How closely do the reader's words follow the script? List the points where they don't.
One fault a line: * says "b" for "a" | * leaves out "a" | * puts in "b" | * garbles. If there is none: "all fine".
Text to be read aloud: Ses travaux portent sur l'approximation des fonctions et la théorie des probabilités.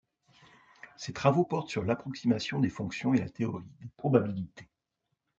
all fine